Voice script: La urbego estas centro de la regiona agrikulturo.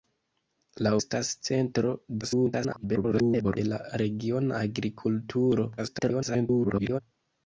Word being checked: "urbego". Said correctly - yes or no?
no